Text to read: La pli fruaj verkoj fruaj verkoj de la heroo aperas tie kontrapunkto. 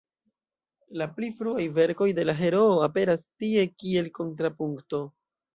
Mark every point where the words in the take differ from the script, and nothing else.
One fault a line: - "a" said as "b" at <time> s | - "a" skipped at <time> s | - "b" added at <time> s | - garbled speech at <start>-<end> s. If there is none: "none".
- "fruaj verkoj" skipped at 2.1 s
- "kiel" added at 3.8 s